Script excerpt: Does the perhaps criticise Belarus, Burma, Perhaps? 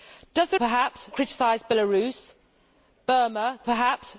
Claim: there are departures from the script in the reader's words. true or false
false